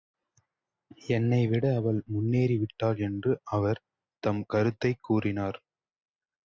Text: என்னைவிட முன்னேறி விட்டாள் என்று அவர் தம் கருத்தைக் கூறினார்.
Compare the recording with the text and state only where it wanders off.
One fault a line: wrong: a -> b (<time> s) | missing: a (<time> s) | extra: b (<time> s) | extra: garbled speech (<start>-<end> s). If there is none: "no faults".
extra: அவள் (1.8 s)